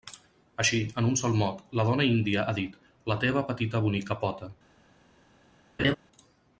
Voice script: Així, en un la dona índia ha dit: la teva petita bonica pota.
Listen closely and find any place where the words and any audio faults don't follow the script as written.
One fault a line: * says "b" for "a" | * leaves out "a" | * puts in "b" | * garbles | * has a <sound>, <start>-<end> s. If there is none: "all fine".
* puts in "sol mot"
* has a laugh, 5.8-6.0 s